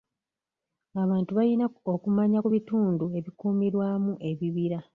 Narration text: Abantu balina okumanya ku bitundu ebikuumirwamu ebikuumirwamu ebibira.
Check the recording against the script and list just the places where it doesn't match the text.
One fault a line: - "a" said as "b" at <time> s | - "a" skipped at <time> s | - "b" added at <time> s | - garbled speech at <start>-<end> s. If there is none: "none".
- "ebikuumirwamu" skipped at 4.1 s